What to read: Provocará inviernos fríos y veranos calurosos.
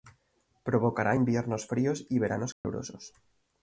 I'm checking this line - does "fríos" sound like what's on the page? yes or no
yes